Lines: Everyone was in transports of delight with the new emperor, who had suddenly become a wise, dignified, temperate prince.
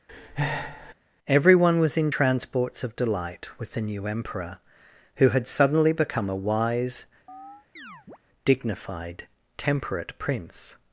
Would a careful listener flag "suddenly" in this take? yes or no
no